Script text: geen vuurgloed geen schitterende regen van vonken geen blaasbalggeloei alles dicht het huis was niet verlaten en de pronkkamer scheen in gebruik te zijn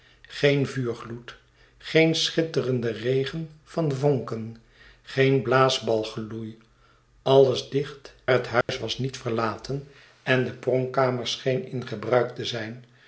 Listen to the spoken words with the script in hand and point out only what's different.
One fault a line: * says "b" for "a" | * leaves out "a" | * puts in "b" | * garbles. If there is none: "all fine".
all fine